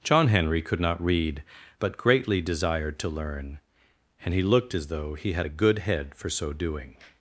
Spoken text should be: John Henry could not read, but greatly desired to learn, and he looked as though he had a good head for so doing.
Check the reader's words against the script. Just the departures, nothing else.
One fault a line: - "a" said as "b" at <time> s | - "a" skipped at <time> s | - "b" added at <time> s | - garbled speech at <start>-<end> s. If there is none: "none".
none